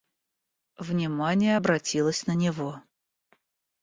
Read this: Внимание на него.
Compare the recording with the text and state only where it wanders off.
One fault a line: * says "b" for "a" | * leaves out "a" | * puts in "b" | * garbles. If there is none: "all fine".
* puts in "обратилось"